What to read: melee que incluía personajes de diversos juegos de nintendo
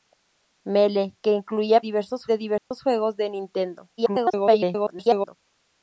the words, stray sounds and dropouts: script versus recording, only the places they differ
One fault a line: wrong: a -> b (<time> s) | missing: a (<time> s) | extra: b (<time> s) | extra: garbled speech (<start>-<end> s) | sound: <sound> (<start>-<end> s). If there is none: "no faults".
wrong: personajes -> diversos (1.8 s)
sound: dropout (2.6-2.7 s)
extra: garbled speech (4.0-5.4 s)